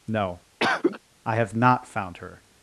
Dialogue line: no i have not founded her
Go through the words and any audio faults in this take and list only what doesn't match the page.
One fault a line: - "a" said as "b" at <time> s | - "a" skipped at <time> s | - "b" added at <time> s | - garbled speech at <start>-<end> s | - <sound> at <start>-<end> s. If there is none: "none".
- cough at 0.6-1.0 s
- "founded" said as "found" at 1.9 s